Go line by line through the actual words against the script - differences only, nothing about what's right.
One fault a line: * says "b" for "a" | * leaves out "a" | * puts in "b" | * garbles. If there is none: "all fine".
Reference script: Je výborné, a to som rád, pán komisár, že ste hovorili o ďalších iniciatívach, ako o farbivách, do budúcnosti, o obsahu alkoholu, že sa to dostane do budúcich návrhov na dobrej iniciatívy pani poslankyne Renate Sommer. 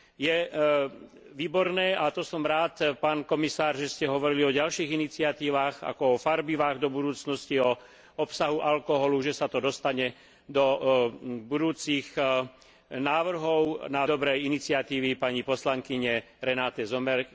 all fine